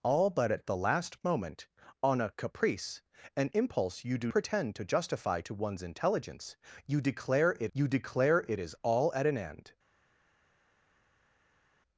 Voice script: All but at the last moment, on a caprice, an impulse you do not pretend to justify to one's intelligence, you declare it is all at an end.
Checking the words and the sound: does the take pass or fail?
fail